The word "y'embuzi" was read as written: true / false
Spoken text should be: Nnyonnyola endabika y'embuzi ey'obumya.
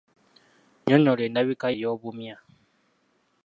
false